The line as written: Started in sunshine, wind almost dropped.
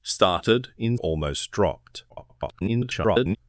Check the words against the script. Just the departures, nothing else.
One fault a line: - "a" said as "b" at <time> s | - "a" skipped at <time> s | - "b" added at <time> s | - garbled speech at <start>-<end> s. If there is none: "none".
- "sunshine wind" skipped at 1.0 s
- garbled speech at 2.1-3.4 s